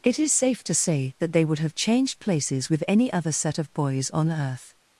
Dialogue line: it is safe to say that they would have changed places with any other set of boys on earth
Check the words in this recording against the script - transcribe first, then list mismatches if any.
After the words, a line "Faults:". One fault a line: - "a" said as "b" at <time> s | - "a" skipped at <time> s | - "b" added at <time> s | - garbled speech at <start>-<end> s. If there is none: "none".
it is safe to say that they would have changed places with any other set of boys on earth
Faults:
none